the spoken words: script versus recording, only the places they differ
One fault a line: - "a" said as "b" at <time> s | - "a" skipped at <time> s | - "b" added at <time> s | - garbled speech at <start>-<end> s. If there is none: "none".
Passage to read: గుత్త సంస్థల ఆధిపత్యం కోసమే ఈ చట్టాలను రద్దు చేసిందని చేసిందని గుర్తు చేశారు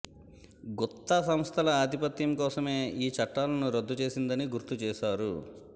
- "చేసిందని" skipped at 4.5 s